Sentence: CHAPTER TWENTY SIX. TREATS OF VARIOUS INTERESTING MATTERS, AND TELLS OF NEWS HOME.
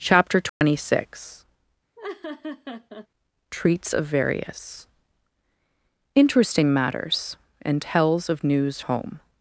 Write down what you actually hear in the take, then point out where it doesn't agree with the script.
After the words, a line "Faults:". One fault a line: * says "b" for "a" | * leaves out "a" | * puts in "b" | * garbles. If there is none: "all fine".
CHAPTER TWENTY SIX. TREATS OF VARIOUS INTERESTING MATTERS, AND TELLS OF NEWS HOME.
Faults:
all fine